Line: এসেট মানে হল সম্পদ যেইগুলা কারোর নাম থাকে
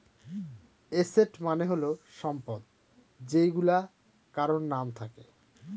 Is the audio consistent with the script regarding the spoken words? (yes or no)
yes